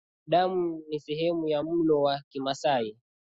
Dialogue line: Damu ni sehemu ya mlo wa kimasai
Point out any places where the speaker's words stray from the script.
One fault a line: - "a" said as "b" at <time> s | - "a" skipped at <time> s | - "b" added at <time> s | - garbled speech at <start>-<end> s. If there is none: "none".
none